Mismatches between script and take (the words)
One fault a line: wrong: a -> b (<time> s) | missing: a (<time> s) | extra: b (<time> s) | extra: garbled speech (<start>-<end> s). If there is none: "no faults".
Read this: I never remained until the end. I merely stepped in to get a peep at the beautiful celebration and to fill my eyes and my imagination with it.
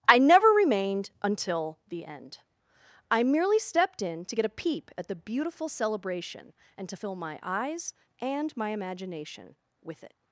no faults